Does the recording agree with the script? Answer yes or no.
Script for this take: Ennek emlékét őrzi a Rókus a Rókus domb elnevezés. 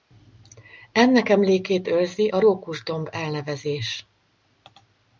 no